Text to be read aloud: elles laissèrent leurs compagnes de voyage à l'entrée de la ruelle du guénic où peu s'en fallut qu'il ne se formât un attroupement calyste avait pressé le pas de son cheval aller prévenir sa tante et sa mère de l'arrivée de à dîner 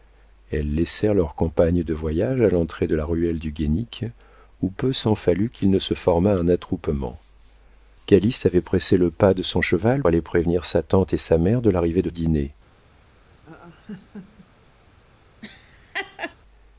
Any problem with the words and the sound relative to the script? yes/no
yes